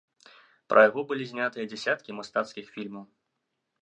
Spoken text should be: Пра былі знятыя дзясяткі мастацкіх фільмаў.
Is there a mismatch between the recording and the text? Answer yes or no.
yes